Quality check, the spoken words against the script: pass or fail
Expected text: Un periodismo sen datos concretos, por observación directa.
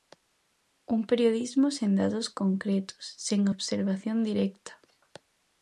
fail